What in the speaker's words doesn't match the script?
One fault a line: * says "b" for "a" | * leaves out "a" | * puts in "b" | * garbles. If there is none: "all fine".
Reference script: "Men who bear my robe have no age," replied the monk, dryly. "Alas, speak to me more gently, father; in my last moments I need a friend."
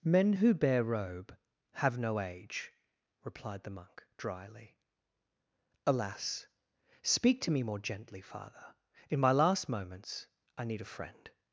* leaves out "my"